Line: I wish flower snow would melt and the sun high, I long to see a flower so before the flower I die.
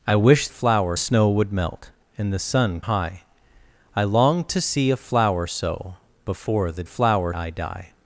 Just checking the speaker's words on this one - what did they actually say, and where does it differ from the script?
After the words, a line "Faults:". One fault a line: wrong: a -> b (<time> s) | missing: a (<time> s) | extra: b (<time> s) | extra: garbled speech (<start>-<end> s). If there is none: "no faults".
I wish flower snow would melt and the sun high, I long to see a flower so before the flower I die.
Faults:
no faults